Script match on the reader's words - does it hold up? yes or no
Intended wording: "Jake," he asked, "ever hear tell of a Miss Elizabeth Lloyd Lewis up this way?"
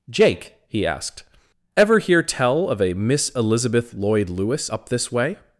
yes